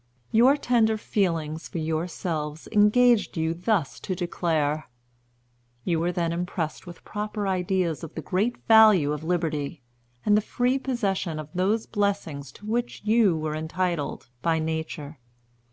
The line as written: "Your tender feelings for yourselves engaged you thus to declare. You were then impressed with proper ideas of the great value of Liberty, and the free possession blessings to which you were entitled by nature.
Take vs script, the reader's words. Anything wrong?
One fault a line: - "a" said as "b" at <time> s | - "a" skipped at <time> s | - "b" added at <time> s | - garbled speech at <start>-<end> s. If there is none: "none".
- "of those" added at 11.4 s